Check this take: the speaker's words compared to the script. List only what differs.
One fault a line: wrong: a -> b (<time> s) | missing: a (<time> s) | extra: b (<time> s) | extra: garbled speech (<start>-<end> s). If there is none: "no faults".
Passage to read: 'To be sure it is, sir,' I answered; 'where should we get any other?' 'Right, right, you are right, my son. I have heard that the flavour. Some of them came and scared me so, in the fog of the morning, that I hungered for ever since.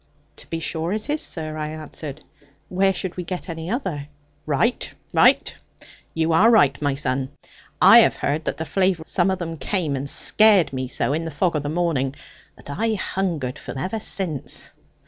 no faults